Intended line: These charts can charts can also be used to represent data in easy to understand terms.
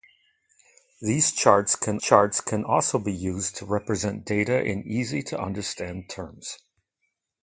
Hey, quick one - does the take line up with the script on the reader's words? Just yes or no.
yes